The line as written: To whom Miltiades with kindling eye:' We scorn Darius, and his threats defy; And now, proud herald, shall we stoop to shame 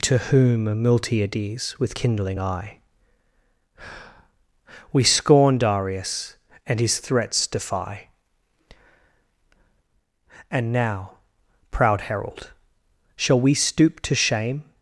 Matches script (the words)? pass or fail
pass